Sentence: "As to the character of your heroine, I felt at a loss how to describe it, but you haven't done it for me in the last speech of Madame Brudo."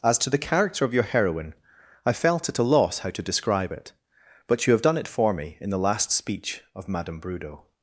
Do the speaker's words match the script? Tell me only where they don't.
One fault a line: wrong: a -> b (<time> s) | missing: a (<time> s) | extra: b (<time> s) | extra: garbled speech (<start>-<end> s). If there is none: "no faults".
wrong: haven't -> have (4.7 s)